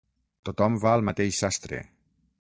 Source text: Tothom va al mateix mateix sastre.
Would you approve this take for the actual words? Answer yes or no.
no